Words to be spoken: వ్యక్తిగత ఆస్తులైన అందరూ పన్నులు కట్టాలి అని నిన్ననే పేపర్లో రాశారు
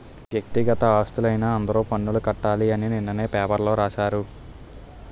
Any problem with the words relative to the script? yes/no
no